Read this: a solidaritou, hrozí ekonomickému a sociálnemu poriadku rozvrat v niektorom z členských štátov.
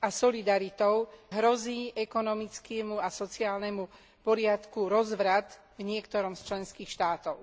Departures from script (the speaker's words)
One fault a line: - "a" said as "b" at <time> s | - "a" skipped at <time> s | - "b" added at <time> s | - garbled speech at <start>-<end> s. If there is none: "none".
none